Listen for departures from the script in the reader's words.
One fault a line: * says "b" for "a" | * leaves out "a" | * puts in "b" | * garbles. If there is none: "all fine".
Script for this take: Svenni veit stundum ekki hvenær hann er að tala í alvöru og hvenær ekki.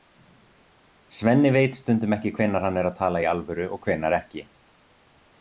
all fine